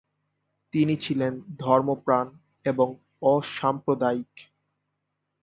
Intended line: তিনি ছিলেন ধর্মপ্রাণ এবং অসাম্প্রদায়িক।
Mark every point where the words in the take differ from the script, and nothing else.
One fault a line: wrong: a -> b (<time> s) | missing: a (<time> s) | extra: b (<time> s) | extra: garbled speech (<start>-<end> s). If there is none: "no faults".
no faults